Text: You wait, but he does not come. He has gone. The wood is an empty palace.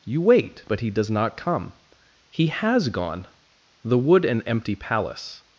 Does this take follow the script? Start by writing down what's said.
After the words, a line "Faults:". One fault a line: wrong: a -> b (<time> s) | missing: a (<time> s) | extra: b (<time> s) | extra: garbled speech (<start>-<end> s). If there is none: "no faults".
You wait, but he does not come. He has gone. The wood an empty palace.
Faults:
missing: is (4.3 s)